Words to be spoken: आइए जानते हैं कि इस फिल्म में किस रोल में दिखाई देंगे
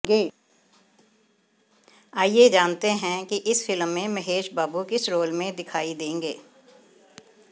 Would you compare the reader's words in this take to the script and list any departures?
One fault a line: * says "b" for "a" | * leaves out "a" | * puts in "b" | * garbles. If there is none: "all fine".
* puts in "महेश बाबू"